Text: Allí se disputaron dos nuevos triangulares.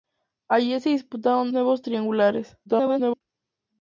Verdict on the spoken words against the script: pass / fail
fail